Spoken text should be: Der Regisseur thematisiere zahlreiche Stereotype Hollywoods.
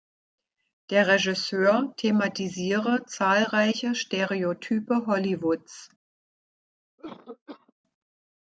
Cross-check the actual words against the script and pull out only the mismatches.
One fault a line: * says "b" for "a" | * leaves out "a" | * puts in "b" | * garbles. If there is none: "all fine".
all fine